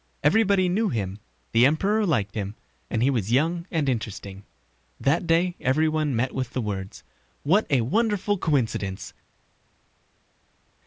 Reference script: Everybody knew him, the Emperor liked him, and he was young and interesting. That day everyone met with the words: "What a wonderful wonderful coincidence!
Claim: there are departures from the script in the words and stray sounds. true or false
true